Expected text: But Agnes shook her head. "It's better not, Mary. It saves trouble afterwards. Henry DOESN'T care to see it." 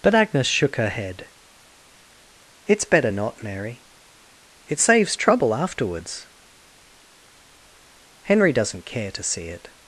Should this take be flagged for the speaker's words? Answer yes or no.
no